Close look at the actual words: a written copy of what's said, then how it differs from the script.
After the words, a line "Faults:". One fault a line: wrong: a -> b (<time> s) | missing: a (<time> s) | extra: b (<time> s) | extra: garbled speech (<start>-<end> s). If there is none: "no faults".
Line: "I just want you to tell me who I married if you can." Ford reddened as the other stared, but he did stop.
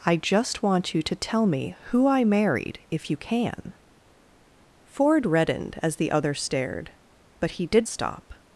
"I just want you to tell me who I married if you can." Ford reddened as the other stared, but he did stop.
Faults:
no faults